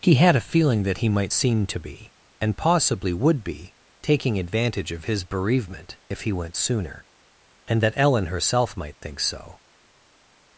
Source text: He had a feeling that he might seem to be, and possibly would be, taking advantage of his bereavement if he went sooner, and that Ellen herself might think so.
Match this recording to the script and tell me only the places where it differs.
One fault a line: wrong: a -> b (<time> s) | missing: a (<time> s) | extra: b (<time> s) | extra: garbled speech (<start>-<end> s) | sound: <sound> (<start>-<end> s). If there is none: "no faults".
no faults